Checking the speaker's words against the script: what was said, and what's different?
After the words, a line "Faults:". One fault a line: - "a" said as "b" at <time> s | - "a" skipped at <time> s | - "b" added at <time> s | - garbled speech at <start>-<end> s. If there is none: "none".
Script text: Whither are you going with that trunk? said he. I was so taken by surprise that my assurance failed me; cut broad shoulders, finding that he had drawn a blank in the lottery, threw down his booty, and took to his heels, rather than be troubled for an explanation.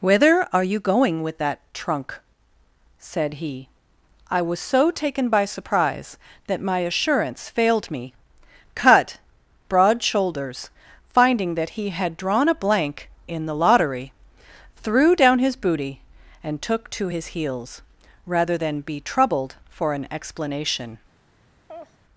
Whither are you going with that trunk? said he. I was so taken by surprise that my assurance failed me; cut broad shoulders, finding that he had drawn a blank in the lottery, threw down his booty, and took to his heels, rather than be troubled for an explanation.
Faults:
none